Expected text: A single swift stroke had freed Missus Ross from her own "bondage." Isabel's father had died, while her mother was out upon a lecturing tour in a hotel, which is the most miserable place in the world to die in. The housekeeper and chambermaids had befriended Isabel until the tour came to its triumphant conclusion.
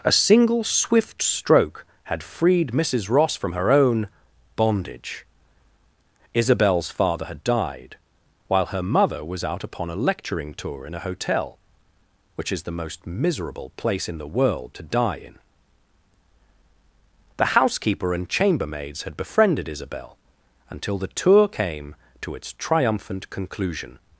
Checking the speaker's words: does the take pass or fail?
pass